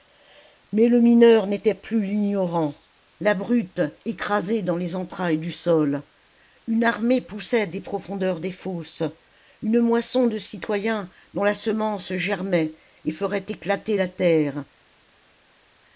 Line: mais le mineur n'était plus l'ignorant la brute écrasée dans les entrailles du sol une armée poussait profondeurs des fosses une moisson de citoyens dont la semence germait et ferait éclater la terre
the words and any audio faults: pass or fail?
fail